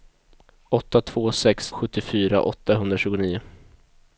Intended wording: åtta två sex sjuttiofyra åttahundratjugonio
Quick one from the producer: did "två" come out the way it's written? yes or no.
yes